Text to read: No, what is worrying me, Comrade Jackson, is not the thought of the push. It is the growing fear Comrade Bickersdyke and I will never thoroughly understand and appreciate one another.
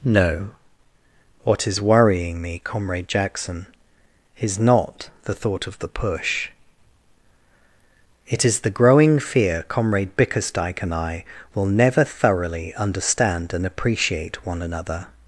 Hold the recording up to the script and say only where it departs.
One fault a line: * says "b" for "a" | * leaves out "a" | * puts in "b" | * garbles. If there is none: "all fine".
all fine